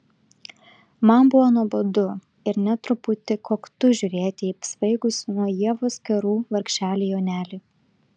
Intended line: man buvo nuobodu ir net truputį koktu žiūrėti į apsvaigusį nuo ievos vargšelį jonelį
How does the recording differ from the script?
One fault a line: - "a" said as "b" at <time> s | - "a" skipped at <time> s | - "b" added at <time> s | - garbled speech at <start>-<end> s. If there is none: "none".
- "kerų" added at 6.1 s